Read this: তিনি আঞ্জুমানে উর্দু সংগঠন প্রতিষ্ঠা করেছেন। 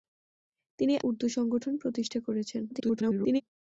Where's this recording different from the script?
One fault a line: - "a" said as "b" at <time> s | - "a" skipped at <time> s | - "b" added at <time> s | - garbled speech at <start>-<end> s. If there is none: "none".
- "আঞ্জুমানে" skipped at 0.9 s
- garbled speech at 2.7-3.4 s